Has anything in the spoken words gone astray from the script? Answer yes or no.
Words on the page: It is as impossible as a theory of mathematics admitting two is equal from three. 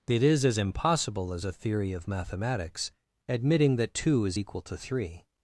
yes